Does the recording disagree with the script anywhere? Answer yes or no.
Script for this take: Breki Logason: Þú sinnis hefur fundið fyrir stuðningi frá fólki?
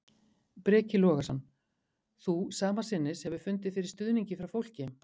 yes